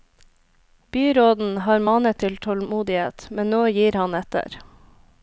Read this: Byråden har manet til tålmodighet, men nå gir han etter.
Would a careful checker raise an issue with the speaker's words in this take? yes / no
no